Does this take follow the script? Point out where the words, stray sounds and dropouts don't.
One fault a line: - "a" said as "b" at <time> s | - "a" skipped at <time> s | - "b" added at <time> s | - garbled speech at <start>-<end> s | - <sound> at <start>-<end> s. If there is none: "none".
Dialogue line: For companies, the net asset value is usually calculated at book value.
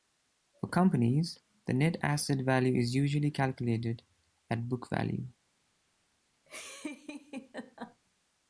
- laugh at 6.5-8.0 s